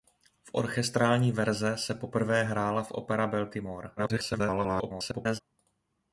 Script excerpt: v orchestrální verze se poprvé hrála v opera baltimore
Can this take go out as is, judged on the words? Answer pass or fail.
fail